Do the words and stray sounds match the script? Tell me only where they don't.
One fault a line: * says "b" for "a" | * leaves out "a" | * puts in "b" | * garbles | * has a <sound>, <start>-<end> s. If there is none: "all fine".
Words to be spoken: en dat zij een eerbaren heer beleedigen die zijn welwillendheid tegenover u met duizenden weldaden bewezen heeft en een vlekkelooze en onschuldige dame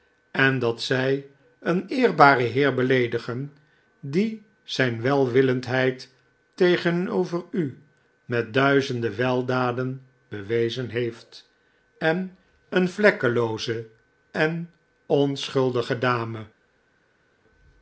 all fine